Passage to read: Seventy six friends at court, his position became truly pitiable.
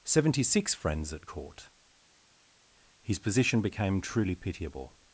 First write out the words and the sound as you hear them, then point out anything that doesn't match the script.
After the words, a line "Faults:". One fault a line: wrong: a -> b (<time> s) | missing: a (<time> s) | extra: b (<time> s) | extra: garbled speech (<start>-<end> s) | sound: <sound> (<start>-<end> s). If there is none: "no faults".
Seventy six friends at court, his position became truly pitiable.
Faults:
no faults